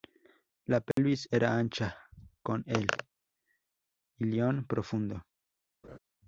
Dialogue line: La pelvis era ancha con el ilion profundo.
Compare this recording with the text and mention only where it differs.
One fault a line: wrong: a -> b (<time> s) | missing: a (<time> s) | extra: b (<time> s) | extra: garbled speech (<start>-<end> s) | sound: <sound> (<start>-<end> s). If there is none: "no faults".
sound: dropout (0.9-1.0 s)
sound: laugh (5.8-6.0 s)